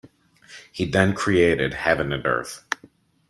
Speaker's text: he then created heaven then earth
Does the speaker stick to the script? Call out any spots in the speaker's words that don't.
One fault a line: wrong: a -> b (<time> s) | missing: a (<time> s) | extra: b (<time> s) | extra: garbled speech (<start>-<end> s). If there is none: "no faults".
wrong: then -> and (2.1 s)